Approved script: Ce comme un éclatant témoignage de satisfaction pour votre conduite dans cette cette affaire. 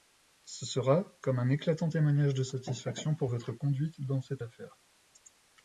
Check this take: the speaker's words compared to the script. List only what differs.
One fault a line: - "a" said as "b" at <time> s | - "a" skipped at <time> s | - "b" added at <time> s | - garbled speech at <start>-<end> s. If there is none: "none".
- "sera" added at 0.7 s
- "cette" skipped at 4.4 s